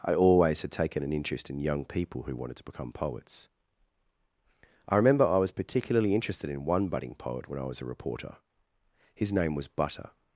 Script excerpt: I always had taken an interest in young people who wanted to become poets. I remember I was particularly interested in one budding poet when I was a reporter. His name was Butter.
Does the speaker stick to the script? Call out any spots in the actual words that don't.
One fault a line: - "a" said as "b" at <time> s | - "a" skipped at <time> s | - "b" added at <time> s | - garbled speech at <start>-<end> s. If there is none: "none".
none